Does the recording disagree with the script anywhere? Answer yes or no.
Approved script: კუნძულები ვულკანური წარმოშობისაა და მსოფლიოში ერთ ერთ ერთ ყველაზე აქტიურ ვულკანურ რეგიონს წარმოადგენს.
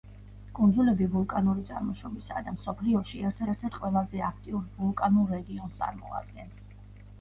no